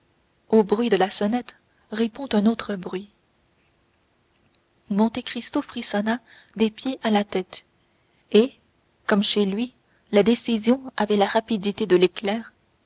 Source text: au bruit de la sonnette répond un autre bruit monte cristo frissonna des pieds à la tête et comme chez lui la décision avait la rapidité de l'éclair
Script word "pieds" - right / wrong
right